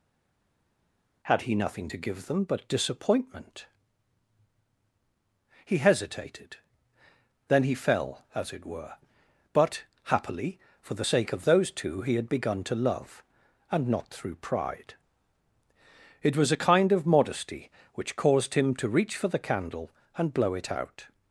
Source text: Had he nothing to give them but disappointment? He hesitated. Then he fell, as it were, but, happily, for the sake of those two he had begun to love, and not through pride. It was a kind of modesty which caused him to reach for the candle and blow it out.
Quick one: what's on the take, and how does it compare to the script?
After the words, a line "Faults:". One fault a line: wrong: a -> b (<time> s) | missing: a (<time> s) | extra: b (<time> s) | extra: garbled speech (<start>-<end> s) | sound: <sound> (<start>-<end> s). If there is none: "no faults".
Had he nothing to give them but disappointment? He hesitated. Then he fell, as it were, but, happily, for the sake of those two he had begun to love, and not through pride. It was a kind of modesty which caused him to reach for the candle and blow it out.
Faults:
no faults